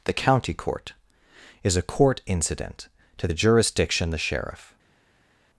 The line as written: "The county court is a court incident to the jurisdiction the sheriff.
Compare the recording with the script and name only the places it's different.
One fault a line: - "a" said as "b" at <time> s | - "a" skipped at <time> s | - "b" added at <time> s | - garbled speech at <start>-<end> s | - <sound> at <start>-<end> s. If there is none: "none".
none